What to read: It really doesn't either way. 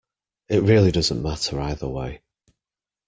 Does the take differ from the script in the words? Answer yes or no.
yes